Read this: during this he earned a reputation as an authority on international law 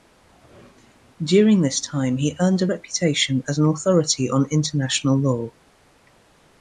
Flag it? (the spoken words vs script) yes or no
yes